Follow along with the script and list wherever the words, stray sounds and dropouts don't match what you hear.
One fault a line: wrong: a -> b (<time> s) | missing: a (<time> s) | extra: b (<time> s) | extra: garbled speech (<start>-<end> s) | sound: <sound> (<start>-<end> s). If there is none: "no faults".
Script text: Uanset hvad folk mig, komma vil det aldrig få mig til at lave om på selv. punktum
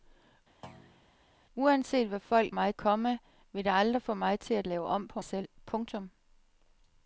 sound: thud (0.6-1.1 s)